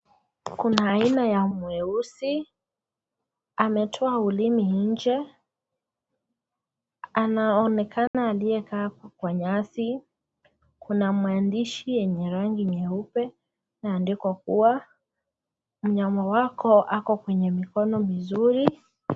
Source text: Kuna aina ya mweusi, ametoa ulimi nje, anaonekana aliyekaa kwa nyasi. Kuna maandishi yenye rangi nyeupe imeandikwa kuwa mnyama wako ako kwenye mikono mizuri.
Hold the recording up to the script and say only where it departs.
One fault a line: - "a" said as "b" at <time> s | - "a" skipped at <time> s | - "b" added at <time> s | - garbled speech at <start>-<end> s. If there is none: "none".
none